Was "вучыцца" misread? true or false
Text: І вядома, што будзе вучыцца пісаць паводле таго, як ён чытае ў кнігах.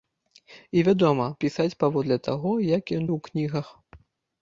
true